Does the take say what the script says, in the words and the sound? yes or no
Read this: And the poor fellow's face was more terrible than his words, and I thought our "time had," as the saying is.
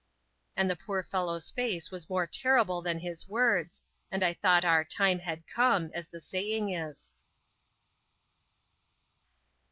no